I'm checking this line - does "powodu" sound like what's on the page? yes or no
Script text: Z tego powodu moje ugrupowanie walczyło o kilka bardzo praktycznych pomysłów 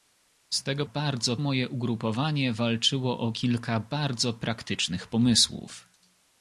no